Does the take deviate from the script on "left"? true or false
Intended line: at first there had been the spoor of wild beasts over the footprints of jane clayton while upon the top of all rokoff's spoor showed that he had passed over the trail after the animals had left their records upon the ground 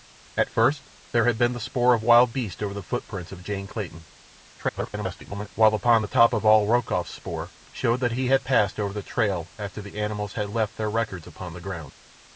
false